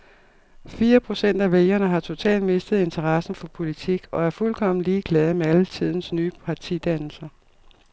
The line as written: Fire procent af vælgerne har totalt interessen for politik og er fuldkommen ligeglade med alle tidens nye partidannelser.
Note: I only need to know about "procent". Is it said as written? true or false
true